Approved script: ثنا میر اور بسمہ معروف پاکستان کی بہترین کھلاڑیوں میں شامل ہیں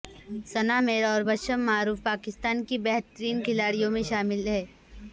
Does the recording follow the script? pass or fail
pass